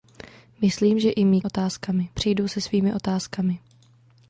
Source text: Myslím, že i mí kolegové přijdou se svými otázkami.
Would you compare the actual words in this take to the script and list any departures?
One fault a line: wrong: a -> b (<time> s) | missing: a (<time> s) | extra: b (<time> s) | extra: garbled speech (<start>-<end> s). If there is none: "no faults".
wrong: kolegové -> otázkami (1.4 s)